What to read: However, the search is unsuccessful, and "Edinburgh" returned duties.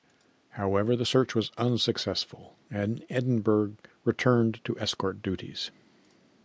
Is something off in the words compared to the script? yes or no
yes